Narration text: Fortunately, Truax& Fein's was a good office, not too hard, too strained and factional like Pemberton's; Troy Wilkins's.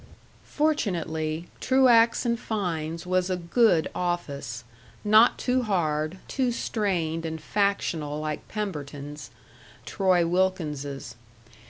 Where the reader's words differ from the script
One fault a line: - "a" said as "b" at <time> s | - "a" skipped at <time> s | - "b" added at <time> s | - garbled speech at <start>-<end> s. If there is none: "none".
none